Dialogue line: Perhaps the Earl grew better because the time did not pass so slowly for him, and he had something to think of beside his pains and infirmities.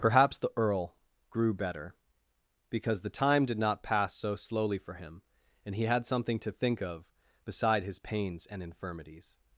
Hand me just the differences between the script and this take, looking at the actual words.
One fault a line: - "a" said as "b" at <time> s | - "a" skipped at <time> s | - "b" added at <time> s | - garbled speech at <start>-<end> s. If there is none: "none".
none